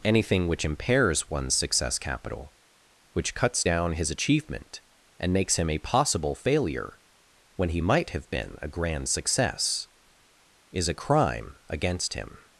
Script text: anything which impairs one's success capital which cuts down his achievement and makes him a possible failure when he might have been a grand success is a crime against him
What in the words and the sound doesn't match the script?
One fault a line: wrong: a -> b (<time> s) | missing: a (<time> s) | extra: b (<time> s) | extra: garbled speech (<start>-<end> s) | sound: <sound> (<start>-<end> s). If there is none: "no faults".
no faults